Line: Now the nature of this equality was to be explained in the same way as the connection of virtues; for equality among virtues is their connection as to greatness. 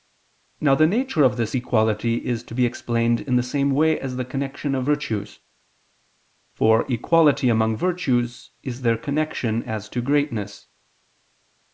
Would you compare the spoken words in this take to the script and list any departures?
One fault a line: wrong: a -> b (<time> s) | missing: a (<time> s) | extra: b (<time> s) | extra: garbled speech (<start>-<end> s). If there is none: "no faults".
wrong: was -> is (2.3 s)